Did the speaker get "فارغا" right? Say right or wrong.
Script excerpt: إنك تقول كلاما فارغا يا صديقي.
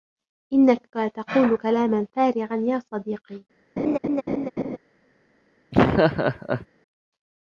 right